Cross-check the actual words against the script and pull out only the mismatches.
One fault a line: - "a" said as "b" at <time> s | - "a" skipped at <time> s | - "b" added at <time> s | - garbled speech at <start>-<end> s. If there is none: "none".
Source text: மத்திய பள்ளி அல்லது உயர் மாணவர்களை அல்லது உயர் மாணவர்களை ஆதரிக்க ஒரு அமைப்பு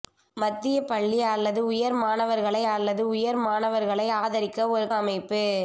none